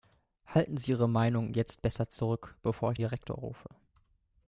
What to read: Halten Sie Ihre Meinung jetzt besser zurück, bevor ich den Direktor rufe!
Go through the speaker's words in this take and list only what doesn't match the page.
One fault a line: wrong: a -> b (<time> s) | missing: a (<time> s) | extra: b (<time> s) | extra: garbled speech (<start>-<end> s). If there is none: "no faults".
missing: den (3.0 s)